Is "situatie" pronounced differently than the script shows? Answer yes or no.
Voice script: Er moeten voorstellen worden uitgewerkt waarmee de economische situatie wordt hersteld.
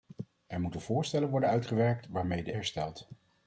yes